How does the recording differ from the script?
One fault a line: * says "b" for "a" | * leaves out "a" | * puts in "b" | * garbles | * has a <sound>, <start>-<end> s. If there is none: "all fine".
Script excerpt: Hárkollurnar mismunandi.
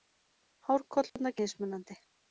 * has a dropout, 1.1-1.2 s